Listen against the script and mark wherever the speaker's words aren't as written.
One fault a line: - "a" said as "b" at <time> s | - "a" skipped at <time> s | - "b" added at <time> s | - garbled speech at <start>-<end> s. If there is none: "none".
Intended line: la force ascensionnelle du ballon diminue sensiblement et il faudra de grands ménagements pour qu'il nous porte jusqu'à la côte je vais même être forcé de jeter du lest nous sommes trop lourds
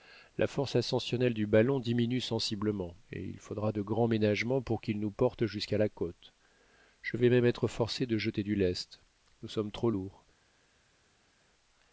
none